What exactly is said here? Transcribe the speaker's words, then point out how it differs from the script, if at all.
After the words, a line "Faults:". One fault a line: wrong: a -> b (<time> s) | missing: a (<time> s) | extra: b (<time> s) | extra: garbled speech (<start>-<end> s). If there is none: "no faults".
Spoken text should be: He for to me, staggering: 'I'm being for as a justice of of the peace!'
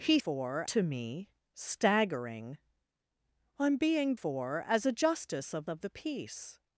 He for to me, staggering: 'I'm being for as a justice of of the peace!'
Faults:
no faults